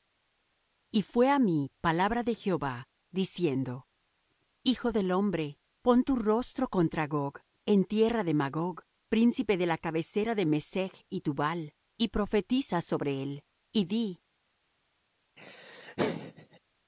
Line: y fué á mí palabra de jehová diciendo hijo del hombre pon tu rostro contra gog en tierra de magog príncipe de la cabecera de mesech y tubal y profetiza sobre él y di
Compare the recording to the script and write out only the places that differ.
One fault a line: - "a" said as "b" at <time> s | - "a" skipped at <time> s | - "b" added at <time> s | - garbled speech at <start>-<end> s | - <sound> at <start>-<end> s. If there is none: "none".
- laugh at 15.4-16.6 s